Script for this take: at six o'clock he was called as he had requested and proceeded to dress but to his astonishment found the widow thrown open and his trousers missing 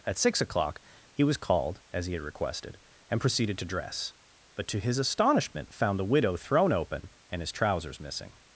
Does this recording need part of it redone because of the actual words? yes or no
no